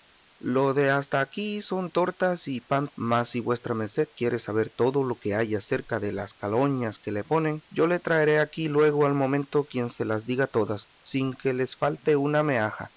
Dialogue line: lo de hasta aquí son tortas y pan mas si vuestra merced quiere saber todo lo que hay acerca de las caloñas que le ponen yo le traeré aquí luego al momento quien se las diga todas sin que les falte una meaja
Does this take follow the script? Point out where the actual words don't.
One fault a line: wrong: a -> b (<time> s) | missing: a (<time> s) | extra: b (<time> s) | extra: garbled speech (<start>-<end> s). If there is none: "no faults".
no faults